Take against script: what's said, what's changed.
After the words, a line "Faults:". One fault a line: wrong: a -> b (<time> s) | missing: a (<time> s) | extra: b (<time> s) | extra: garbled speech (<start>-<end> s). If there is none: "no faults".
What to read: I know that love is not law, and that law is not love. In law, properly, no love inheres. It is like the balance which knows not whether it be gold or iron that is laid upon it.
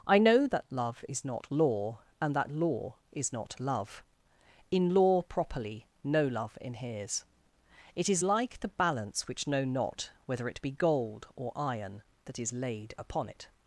I know that love is not law, and that law is not love. In law, properly, no love inheres. It is like the balance which know not whether it be gold or iron that is laid upon it.
Faults:
wrong: knows -> know (9.5 s)